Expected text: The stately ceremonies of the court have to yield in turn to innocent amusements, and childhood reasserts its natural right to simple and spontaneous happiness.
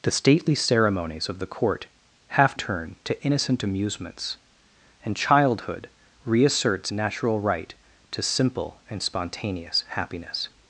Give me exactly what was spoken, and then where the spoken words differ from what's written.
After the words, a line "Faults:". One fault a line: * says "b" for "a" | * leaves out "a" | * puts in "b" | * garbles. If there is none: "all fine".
The stately ceremonies of the court have turn to innocent amusements, and childhood reasserts natural right to simple and spontaneous happiness.
Faults:
* leaves out "to yield in"
* leaves out "its"